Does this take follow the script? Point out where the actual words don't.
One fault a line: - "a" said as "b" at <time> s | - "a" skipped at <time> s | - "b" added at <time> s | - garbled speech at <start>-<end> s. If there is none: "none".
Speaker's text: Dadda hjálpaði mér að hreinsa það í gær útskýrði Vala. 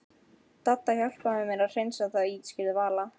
- "gær" skipped at 2.4 s